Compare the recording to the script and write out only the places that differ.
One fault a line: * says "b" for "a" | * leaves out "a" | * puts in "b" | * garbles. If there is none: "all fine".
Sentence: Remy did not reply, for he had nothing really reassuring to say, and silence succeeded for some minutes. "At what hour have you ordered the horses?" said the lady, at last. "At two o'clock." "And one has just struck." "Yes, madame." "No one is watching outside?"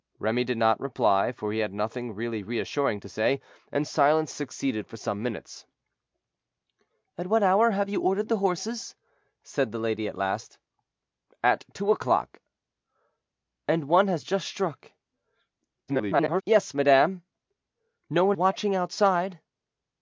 * garbles
* leaves out "is"